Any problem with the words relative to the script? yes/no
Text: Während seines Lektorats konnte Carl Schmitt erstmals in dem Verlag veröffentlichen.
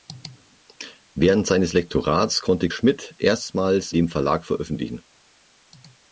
yes